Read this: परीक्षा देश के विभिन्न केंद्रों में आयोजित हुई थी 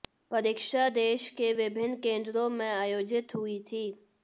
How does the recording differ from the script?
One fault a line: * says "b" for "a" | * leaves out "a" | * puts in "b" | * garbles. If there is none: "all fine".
all fine